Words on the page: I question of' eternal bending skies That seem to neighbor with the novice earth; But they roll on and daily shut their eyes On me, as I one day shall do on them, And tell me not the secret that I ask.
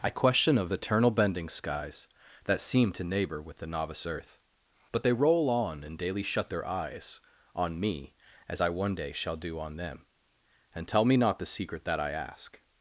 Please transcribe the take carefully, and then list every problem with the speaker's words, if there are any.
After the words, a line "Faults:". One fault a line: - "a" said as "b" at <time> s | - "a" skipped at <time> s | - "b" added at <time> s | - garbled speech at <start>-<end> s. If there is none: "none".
I question of' eternal bending skies That seem to neighbor with the novice earth; But they roll on and daily shut their eyes On me, as I one day shall do on them, And tell me not the secret that I ask.
Faults:
none